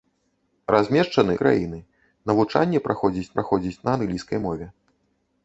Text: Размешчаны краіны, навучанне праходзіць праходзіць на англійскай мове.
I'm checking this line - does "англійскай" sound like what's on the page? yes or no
yes